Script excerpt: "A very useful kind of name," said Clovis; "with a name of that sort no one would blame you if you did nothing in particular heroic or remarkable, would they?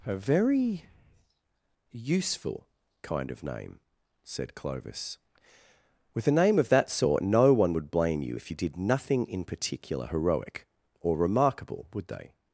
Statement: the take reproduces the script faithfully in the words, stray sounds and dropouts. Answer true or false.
true